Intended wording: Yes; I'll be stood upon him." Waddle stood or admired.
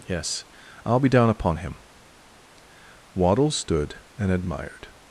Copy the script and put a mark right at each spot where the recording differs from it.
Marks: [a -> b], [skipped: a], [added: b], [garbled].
Yes; I'll be [stood -> down] upon him." Waddle stood [or -> and] admired.